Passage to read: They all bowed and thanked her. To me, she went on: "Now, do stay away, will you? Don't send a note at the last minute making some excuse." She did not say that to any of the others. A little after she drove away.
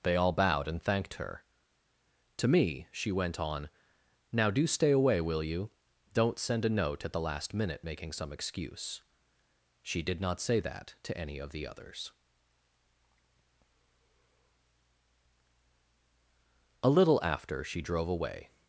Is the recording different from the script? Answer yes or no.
no